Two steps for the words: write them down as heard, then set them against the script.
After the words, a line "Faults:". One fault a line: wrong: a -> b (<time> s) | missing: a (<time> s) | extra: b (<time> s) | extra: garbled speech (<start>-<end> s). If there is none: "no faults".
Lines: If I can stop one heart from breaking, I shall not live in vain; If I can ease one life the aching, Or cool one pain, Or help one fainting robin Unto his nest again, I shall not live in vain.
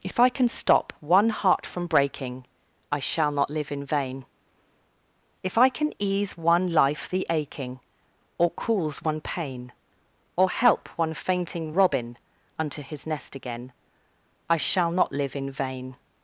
If I can stop one heart from breaking, I shall not live in vain; If I can ease one life the aching, Or cools one pain, Or help one fainting robin Unto his nest again, I shall not live in vain.
Faults:
wrong: cool -> cools (8.5 s)